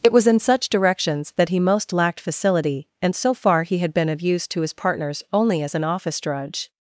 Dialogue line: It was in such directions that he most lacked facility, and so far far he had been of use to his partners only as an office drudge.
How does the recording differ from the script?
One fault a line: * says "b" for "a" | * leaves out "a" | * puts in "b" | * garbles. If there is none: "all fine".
* leaves out "far"